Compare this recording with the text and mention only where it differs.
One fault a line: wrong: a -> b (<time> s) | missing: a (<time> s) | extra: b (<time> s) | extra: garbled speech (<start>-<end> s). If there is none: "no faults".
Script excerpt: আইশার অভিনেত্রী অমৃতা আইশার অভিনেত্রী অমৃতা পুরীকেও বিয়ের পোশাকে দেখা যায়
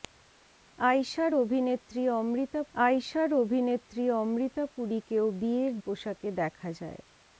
no faults